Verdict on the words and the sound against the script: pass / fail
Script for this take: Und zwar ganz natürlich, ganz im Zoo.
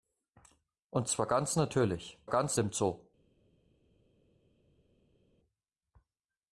pass